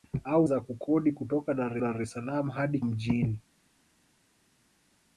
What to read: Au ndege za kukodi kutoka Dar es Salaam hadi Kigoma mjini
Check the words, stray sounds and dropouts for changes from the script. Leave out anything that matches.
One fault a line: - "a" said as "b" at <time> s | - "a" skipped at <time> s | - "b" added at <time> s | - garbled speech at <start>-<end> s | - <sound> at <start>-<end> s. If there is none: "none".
- "ndege" skipped at 0.5 s
- "Dar" added at 1.8 s
- "Kigoma" skipped at 2.8 s